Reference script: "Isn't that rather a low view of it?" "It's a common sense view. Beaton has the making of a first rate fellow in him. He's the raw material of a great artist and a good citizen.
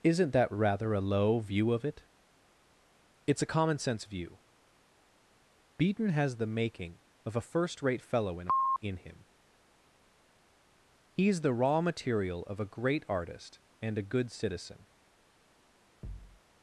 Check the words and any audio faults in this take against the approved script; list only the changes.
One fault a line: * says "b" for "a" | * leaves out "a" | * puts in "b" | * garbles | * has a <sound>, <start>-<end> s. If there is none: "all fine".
* puts in "in"
* has a thud, 16.0-16.4 s